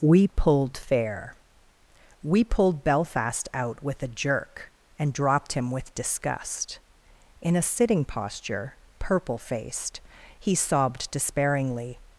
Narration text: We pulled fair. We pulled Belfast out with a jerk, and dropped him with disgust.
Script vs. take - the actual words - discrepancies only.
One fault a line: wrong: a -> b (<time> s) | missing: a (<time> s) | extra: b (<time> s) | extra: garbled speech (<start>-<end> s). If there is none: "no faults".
extra: In a sitting posture purple faced he sobbed despairingly (7.4 s)